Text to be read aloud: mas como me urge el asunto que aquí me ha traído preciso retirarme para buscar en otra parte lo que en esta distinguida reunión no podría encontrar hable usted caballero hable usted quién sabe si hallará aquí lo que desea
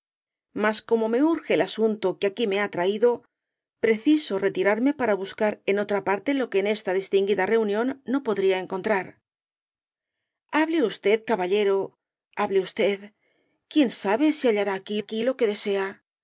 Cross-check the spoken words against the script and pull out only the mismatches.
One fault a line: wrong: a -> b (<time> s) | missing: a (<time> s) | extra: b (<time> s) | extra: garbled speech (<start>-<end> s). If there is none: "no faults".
extra: aquí (15.0 s)